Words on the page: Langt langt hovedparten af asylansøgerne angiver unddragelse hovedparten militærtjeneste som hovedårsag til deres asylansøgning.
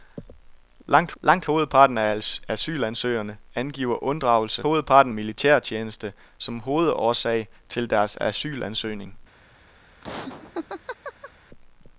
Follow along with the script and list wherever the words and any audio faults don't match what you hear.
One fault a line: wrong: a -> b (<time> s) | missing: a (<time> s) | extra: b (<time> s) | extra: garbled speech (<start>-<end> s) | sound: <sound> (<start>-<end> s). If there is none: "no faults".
sound: laugh (10.0-11.3 s)